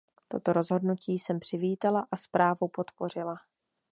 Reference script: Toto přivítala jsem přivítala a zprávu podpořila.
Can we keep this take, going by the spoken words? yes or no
no